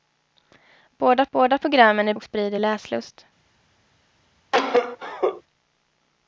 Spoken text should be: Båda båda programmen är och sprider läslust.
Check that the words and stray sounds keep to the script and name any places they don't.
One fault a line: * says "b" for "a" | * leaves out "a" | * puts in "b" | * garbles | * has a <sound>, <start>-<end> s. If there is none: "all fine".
* has a cough, 4.5-5.4 s